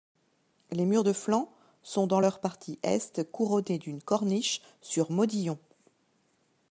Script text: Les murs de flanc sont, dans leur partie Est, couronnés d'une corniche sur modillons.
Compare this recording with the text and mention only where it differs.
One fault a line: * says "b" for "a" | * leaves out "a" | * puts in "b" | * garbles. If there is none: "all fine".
all fine